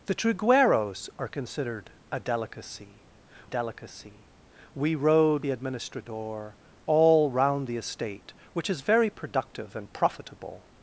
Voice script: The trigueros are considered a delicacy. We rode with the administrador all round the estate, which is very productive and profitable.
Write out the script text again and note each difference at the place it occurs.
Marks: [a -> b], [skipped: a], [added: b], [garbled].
The trigueros are considered a delicacy. [added: delicacy] We rode [skipped: with] the administrador all round the estate, which is very productive and profitable.